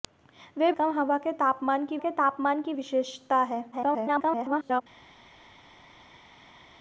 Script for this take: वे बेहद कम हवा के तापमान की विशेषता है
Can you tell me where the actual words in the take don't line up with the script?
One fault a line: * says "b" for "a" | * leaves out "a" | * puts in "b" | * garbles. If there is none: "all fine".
* leaves out "बेहद"
* puts in "के तापमान की"
* garbles